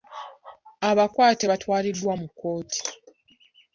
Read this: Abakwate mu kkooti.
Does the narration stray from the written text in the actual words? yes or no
yes